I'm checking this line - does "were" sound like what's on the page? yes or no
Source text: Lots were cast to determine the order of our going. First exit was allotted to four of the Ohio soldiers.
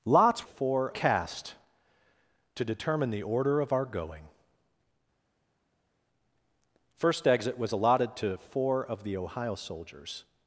no